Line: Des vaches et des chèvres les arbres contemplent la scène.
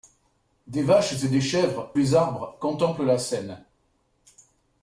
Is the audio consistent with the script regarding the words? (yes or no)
yes